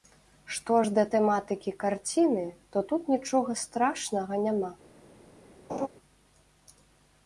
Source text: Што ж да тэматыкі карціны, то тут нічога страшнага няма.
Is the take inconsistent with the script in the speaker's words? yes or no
no